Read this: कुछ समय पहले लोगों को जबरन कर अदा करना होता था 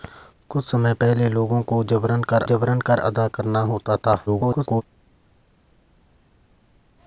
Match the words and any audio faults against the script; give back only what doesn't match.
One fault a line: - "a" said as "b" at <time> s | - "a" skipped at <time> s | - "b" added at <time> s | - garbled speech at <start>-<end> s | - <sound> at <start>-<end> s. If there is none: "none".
- "जबरन कर" added at 2.4 s
- garbled speech at 4.3-4.8 s